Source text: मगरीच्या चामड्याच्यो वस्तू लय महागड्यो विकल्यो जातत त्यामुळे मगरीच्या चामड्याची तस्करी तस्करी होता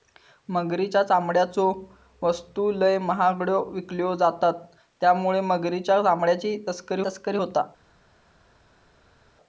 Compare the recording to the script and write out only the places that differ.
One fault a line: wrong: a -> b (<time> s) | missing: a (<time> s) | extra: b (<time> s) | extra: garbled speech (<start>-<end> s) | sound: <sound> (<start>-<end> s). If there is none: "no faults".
no faults